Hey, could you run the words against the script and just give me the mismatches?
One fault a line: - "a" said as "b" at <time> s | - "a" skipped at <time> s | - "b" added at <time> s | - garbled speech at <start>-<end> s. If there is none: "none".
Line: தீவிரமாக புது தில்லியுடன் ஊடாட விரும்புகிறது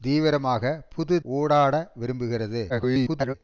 - "தில்லியுடன்" skipped at 1.1 s
- garbled speech at 2.7-3.3 s